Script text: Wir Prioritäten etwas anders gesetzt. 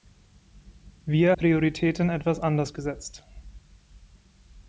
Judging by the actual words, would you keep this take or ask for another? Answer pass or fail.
pass